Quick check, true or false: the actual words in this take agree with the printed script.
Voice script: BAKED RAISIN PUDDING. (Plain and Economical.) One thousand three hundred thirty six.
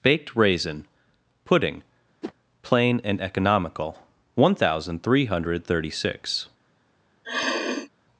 true